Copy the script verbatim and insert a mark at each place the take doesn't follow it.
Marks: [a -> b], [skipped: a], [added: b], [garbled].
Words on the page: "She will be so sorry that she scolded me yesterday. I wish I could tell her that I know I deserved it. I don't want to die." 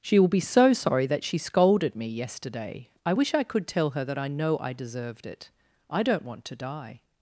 "She will be so sorry that she scolded me yesterday. I wish I could tell her that I know I deserved it. I don't want to die."